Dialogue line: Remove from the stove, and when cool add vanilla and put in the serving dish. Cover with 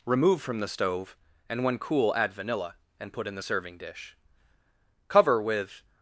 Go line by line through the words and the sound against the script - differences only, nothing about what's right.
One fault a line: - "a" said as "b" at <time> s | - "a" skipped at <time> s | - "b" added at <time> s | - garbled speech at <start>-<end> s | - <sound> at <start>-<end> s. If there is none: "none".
none